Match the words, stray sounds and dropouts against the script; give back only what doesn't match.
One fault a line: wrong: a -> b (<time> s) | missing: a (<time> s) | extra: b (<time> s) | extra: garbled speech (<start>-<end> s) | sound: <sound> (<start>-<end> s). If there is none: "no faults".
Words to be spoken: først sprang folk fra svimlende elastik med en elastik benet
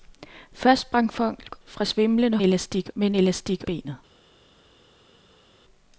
no faults